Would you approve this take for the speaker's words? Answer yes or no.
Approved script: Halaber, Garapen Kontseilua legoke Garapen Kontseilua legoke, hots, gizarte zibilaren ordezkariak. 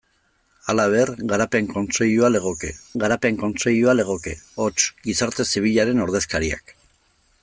yes